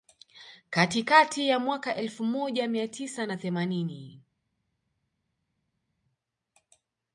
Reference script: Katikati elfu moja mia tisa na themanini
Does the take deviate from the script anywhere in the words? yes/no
yes